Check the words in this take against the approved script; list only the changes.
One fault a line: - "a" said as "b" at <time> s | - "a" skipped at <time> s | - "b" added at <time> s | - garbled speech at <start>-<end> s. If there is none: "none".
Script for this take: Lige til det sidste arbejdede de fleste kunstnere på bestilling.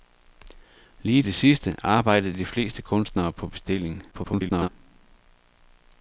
- "til" skipped at 1.2 s
- garbled speech at 4.1-4.7 s